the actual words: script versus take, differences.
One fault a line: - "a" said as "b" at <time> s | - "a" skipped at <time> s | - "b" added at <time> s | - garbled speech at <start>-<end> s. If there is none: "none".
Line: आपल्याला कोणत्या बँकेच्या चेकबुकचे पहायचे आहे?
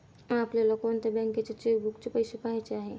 - "पैसे" added at 2.1 s